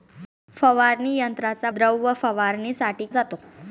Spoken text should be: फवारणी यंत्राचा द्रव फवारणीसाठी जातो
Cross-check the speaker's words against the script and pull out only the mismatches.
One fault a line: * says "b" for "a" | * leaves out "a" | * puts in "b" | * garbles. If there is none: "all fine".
all fine